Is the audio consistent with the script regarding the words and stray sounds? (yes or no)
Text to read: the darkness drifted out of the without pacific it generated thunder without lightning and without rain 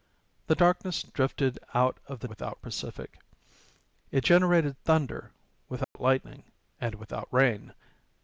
no